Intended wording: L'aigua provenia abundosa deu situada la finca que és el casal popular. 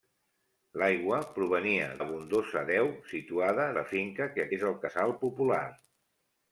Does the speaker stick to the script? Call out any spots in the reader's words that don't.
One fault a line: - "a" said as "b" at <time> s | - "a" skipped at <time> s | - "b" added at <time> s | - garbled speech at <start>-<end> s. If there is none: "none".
none